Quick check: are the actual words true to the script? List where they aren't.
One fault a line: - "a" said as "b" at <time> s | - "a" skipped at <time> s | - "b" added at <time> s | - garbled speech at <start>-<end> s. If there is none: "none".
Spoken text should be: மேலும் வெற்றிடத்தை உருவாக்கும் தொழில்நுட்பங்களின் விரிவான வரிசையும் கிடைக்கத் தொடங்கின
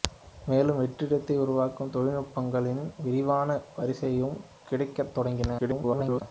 - garbled speech at 5.6-6.2 s